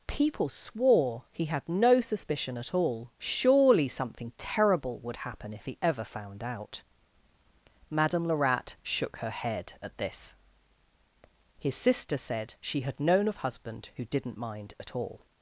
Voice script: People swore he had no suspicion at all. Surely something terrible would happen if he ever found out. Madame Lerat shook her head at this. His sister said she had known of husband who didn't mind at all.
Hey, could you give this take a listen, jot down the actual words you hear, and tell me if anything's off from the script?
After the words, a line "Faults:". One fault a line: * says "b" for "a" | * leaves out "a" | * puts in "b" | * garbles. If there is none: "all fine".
People swore he had no suspicion at all. Surely something terrible would happen if he ever found out. Madame Lerat shook her head at this. His sister said she had known of husband who didn't mind at all.
Faults:
all fine